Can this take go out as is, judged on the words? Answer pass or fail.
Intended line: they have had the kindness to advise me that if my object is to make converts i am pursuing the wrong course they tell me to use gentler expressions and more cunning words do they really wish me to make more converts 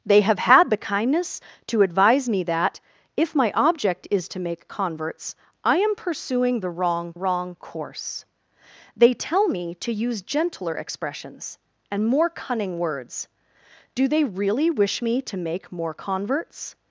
fail